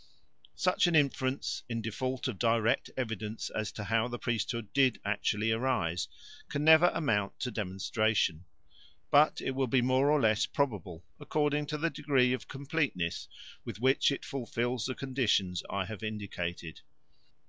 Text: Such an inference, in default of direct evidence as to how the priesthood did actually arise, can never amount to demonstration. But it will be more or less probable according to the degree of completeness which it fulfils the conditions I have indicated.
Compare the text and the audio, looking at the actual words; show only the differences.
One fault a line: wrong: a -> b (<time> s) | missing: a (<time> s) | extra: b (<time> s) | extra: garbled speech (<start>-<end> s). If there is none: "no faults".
extra: with (13.6 s)